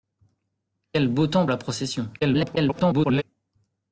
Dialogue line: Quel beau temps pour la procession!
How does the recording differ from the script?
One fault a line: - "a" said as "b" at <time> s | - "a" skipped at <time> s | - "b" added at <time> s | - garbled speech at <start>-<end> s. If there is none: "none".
- "pour" skipped at 1.4 s
- garbled speech at 2.2-3.2 s